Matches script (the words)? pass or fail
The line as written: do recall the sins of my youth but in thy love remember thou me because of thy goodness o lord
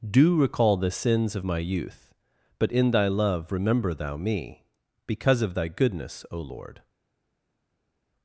pass